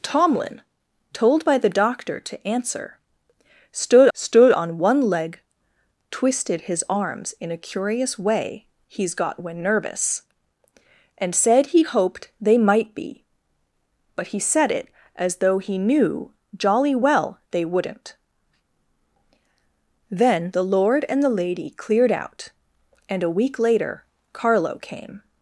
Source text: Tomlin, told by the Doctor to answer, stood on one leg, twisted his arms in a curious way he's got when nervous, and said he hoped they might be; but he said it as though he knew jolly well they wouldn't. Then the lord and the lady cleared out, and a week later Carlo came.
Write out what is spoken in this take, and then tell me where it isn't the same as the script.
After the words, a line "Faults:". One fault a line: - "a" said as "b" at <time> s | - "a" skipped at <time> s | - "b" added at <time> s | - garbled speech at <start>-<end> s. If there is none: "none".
Tomlin, told by the Doctor to answer, stood stood on one leg, twisted his arms in a curious way he's got when nervous, and said he hoped they might be; but he said it as though he knew jolly well they wouldn't. Then the lord and the lady cleared out, and a week later Carlo came.
Faults:
- "stood" added at 4.1 s